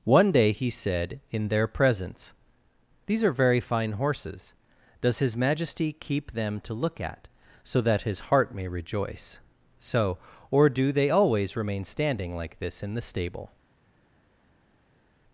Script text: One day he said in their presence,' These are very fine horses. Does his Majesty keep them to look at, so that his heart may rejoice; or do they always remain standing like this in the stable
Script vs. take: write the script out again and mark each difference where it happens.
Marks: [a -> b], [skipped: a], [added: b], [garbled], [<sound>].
One day he said in their presence,' These are very fine horses. Does his Majesty keep them to look at, so that his heart may rejoice; [added: so] or do they always remain standing like this in the stable